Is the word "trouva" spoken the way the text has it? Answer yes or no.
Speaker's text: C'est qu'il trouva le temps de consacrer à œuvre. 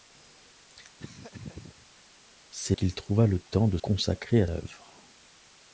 yes